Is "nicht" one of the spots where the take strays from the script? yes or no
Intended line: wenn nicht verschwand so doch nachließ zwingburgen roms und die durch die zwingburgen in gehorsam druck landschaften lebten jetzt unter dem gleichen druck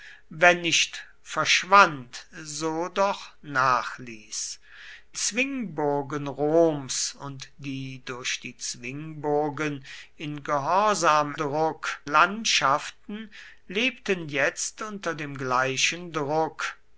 no